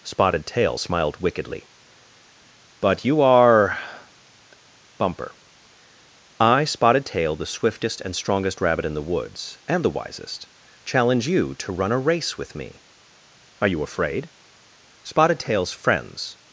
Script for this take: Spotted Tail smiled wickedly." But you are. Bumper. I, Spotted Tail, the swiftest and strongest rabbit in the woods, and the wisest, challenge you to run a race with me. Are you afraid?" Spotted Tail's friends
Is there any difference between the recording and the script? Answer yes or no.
no